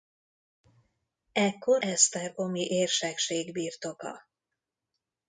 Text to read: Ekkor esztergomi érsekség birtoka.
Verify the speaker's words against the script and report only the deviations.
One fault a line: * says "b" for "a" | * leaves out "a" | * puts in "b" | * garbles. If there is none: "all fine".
all fine